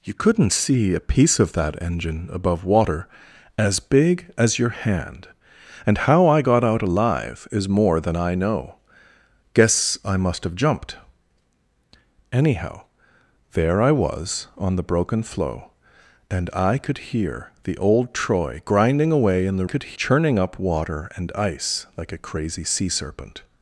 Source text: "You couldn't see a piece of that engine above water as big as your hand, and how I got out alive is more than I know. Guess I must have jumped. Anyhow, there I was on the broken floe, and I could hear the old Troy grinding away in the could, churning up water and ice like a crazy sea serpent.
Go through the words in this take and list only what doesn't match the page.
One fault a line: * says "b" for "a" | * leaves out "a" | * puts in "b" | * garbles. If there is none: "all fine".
all fine